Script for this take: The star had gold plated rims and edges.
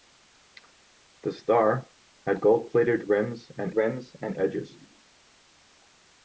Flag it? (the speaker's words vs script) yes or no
yes